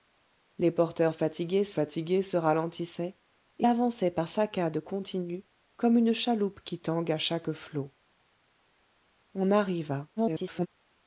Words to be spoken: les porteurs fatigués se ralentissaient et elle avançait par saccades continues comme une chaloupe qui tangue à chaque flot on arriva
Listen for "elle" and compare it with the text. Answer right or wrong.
wrong